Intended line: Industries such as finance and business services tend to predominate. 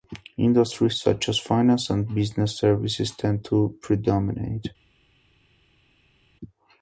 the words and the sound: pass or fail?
pass